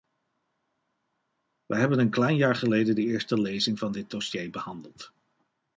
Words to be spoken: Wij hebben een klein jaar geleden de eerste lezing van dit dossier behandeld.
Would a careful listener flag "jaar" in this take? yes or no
no